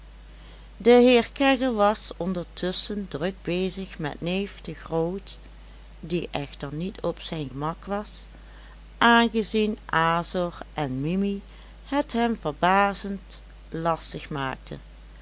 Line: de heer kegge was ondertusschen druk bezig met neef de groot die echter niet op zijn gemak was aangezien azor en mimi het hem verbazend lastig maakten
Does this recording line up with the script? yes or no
yes